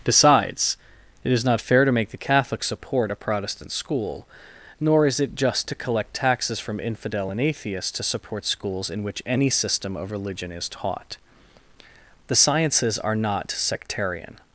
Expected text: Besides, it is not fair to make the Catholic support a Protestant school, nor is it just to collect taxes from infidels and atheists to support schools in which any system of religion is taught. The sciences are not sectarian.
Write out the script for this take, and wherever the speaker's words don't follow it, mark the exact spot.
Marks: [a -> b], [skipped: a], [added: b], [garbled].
Besides, it is not fair to make the Catholic support a Protestant school, nor is it just to collect taxes from [infidels -> infidel] and atheists to support schools in which any system of religion is taught. The sciences are not sectarian.